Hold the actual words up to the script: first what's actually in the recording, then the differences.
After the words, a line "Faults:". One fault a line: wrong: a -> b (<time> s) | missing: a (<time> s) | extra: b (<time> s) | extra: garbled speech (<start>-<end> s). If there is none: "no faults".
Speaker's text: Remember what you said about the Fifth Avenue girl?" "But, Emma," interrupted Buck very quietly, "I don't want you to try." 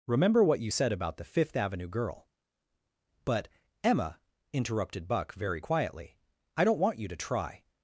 Remember what you said about the Fifth Avenue girl?" "But, Emma," interrupted Buck very quietly, "I don't want you to try."
Faults:
no faults